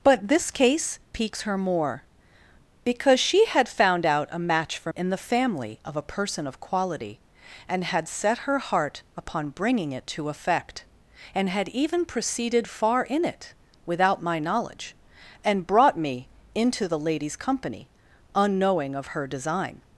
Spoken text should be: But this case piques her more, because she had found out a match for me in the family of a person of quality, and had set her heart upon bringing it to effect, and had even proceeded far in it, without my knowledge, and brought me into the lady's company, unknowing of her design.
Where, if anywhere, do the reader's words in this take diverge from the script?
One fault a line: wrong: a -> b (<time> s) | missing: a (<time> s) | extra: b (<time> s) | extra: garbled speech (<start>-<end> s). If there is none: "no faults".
missing: me (4.9 s)